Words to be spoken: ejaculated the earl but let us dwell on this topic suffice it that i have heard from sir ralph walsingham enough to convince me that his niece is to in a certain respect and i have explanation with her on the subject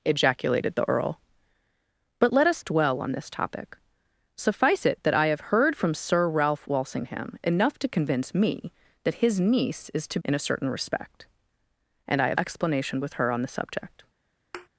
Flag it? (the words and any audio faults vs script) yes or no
yes